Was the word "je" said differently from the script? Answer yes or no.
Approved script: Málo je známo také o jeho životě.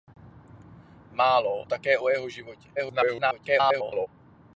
yes